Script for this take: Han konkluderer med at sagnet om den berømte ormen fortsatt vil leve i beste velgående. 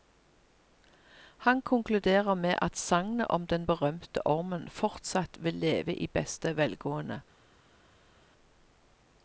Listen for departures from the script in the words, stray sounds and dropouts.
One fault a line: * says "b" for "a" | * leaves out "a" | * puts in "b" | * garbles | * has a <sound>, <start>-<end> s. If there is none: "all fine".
all fine